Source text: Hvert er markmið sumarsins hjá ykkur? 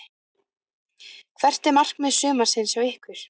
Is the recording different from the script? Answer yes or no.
no